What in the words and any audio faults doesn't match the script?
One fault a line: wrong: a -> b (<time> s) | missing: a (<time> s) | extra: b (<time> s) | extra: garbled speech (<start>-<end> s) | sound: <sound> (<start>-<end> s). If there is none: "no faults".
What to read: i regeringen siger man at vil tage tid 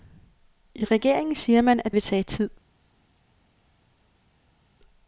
no faults